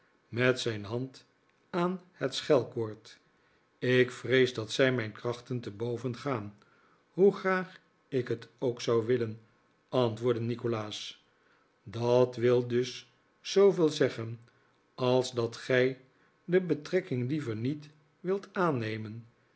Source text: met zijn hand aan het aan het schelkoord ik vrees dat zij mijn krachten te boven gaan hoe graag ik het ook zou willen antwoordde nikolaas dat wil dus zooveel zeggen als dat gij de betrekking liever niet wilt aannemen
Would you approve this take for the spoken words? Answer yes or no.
no